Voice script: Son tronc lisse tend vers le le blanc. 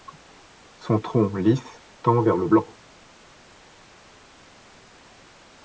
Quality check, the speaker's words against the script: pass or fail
fail